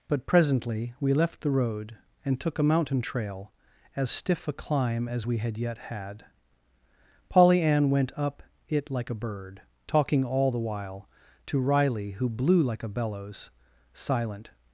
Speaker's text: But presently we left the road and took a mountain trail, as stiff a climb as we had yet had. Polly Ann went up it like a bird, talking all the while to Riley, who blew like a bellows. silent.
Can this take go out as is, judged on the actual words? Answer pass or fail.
pass